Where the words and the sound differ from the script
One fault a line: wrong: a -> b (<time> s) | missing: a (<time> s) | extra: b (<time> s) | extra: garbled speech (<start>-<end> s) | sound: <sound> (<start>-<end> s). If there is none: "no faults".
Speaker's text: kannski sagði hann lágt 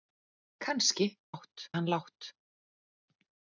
wrong: sagði -> lágt (1.3 s)